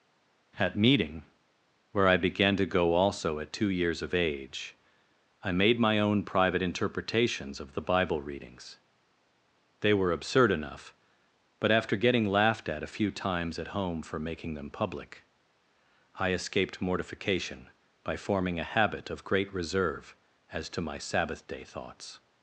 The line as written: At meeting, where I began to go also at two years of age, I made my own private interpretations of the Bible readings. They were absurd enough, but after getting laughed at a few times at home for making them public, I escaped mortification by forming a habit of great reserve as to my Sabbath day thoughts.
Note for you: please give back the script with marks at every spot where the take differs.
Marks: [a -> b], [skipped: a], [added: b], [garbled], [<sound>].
At meeting, where I began to go also at two years of age, I made my own private interpretations of the Bible readings. They were absurd enough, but after getting laughed at a few times at home for making them public, I escaped mortification by forming a habit of great reserve as to my Sabbath day thoughts.